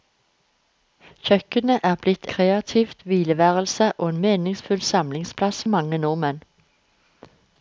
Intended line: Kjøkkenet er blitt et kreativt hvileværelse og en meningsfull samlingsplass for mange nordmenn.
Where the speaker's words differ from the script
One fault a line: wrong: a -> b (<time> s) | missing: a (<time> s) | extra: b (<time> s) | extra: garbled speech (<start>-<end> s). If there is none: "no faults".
missing: et (2.3 s)
missing: for (5.6 s)